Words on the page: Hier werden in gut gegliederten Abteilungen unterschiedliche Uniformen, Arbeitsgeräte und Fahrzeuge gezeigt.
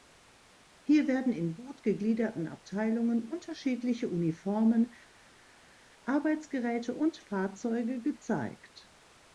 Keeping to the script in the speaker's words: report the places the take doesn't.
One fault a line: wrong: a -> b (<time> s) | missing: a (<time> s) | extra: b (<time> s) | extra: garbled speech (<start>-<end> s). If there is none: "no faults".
no faults